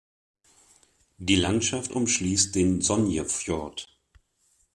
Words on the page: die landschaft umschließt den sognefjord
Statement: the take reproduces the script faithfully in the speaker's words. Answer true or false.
true